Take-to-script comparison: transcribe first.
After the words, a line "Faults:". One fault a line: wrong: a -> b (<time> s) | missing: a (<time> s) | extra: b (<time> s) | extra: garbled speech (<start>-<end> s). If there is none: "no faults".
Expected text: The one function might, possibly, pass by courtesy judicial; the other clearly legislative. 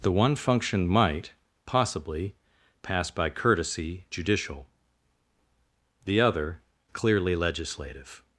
The one function might, possibly, pass by courtesy judicial; the other clearly legislative.
Faults:
no faults